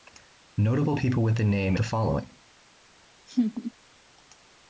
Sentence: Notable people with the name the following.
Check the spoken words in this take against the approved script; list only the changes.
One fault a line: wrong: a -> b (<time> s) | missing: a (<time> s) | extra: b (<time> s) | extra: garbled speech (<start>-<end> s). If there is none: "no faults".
no faults